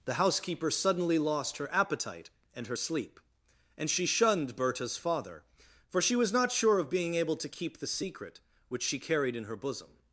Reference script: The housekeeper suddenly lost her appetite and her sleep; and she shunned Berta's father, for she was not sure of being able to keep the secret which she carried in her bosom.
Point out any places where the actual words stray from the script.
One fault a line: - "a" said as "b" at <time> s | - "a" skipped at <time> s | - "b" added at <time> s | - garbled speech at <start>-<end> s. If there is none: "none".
none